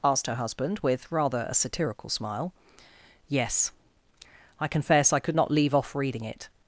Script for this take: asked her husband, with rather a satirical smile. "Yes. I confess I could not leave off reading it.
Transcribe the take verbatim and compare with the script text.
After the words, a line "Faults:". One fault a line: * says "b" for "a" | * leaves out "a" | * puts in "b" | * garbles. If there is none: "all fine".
asked her husband, with rather a satirical smile. "Yes. I confess I could not leave off reading it.
Faults:
all fine